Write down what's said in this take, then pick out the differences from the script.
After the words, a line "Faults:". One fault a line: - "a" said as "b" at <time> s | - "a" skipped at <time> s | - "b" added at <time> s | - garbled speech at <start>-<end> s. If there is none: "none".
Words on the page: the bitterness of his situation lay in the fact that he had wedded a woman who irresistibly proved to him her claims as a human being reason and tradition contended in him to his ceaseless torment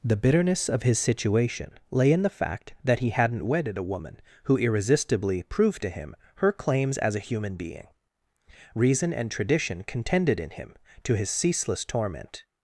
the bitterness of his situation lay in the fact that he hadn't wedded a woman who irresistibly proved to him her claims as a human being reason and tradition contended in him to his ceaseless torment
Faults:
- "had" said as "hadn't" at 3.1 s